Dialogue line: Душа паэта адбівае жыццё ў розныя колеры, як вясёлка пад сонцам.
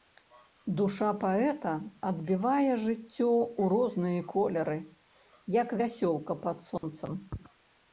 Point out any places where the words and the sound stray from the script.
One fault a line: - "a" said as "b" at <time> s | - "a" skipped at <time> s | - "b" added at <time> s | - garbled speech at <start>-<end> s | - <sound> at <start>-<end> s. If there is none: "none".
- dropout at 6.8-6.8 s